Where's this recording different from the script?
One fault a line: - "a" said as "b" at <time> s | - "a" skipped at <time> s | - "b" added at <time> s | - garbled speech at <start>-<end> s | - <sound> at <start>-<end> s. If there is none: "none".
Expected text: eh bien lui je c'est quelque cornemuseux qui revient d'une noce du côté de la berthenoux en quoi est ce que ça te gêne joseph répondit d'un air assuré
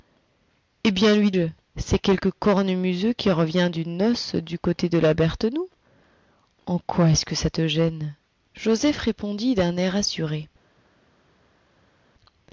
none